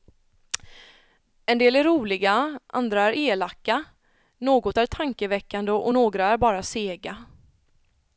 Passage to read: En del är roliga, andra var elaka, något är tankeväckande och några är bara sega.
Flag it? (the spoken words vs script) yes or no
yes